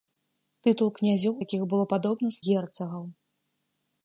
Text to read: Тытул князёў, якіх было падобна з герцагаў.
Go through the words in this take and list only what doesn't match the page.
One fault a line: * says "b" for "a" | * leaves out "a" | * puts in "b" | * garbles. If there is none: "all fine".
all fine